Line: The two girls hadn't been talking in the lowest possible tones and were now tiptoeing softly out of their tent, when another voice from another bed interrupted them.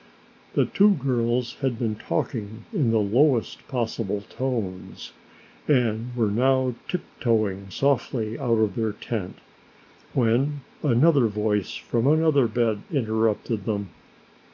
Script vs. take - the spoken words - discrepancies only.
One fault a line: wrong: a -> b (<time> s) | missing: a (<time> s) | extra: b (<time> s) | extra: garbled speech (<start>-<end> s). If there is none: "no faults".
wrong: hadn't -> had (1.6 s)